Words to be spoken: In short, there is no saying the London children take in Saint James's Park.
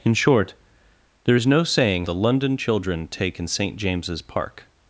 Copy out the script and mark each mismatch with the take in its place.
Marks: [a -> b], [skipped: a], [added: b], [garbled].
In short, there is no saying the London children take in Saint James's Park.